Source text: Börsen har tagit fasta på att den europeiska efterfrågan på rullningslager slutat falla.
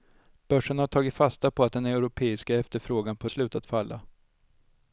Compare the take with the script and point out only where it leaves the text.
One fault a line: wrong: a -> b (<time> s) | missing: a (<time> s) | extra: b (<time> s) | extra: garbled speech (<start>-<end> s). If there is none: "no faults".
missing: rullningslager (3.3 s)